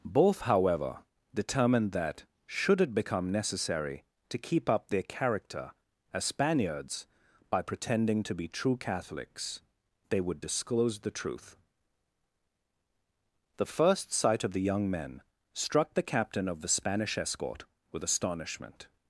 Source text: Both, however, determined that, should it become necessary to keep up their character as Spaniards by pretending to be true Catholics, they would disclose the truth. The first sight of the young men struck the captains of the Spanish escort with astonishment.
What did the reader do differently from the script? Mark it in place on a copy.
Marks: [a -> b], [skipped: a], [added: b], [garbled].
Both, however, determined that, should it become necessary to keep up their character as Spaniards by pretending to be true Catholics, they would disclose the truth. The first sight of the young men struck the [captains -> captain] of the Spanish escort with astonishment.